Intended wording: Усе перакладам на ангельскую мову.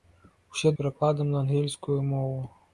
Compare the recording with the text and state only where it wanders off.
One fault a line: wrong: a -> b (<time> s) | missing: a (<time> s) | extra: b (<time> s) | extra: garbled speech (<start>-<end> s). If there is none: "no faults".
no faults